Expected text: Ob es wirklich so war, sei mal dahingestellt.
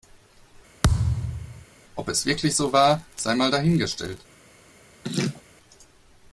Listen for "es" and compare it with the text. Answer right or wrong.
right